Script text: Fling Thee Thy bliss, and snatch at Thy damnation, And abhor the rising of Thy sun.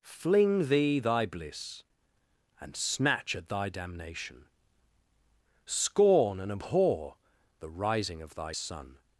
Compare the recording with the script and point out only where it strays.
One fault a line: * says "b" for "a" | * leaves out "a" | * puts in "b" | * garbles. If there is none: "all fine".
* puts in "Scorn"